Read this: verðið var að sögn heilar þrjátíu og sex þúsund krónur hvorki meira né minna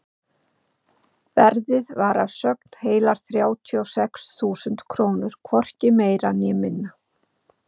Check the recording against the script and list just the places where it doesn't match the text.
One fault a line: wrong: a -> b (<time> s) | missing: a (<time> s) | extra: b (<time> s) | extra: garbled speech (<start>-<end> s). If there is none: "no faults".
no faults